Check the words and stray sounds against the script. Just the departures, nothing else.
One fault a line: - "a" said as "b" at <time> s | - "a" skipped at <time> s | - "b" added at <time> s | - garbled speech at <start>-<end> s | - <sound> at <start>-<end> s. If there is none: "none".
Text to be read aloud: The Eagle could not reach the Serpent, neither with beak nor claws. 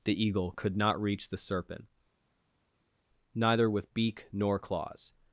none